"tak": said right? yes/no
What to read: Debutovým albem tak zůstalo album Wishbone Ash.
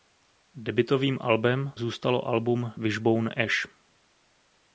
no